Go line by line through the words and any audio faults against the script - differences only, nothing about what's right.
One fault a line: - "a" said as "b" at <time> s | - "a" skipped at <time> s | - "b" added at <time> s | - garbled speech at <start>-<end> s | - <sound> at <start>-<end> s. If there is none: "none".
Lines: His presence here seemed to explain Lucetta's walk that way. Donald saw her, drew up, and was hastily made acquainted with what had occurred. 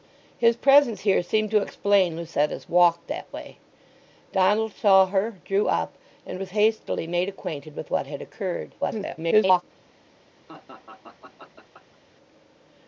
- garbled speech at 8.8-9.6 s
- laugh at 10.5-12.0 s